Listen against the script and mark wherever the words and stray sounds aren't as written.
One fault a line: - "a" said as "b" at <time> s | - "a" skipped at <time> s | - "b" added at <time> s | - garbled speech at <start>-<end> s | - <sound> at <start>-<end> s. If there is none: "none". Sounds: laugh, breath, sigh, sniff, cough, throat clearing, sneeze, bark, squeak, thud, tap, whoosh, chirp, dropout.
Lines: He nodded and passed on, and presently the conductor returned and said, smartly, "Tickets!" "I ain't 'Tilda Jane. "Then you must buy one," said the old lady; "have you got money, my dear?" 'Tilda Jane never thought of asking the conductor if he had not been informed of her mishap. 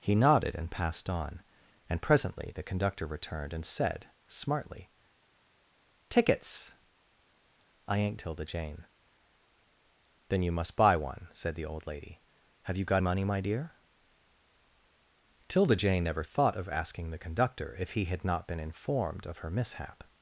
none